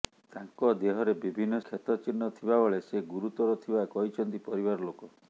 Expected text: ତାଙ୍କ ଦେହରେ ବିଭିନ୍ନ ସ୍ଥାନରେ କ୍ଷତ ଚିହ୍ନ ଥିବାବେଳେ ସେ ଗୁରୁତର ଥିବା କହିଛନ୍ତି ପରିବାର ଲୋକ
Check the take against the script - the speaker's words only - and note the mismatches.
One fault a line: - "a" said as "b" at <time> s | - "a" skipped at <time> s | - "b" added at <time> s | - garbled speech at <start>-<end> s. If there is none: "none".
- "ସ୍ଥାନରେ" skipped at 1.6 s